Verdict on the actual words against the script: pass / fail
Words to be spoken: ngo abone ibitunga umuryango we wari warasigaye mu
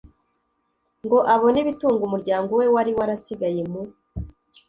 pass